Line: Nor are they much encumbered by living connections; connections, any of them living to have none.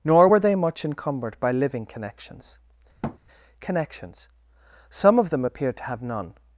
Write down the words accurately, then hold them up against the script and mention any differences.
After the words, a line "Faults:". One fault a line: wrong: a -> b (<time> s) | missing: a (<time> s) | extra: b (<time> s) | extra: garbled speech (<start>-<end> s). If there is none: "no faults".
Nor were they much encumbered by living connections; connections, some of them appeared to have none.
Faults:
wrong: are -> were (0.3 s)
wrong: any -> some (4.9 s)
wrong: living -> appeared (5.4 s)